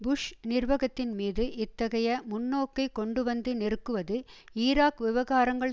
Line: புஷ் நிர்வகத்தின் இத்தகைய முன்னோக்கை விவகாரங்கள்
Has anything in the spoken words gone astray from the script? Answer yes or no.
yes